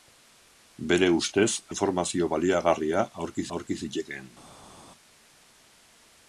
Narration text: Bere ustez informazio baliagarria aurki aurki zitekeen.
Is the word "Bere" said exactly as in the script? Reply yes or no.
yes